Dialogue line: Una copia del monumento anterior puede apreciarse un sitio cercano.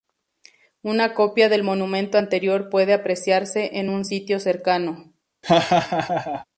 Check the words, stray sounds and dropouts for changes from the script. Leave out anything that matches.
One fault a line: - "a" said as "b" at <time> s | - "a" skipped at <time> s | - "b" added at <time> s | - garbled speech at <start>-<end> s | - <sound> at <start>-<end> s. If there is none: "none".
- "en" added at 3.8 s
- laugh at 5.4-6.5 s